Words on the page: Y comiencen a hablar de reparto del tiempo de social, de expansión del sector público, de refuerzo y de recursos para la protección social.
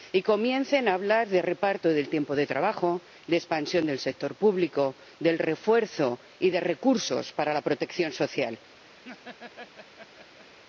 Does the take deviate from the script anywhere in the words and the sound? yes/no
yes